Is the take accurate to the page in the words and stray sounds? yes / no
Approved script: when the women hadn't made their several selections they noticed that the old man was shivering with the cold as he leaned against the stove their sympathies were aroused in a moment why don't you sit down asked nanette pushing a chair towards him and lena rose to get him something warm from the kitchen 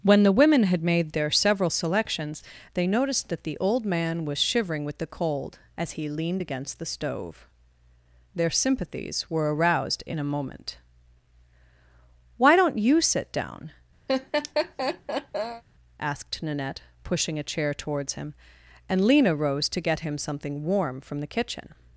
no